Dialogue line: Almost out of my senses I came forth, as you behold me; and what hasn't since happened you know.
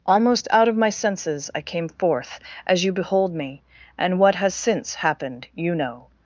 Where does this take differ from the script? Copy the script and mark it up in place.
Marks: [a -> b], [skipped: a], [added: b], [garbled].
Almost out of my senses I came forth, as you behold me; and what [hasn't -> has] since happened you know.